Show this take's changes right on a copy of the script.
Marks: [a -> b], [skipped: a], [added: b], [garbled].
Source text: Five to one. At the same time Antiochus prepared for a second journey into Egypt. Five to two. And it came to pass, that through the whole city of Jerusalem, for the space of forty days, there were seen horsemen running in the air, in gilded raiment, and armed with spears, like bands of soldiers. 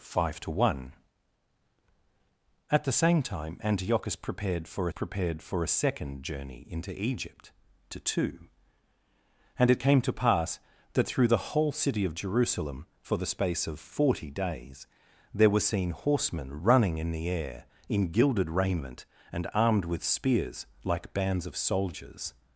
Five to one. At the same time Antiochus prepared for [added: prepared for] a second journey into Egypt. [skipped: Five] to two. And it came to pass, that through the whole city of Jerusalem, for the space of forty days, there were seen horsemen running in the air, in gilded raiment, and armed with spears, like bands of soldiers.